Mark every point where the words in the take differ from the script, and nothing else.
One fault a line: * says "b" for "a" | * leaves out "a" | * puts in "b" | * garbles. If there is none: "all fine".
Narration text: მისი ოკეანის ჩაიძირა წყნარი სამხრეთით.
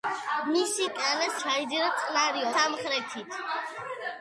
all fine